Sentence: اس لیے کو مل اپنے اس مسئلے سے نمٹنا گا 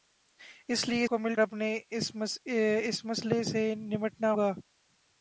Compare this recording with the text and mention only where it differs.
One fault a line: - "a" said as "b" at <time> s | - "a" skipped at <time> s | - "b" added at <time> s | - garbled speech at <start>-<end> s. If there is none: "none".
none